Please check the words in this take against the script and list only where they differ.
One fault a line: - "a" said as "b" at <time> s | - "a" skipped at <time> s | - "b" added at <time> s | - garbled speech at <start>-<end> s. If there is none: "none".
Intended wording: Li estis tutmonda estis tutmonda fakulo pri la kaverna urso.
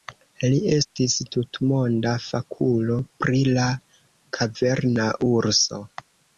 - "estis tutmonda" skipped at 2.1 s